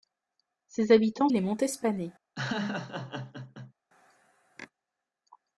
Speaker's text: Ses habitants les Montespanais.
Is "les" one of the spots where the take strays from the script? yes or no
no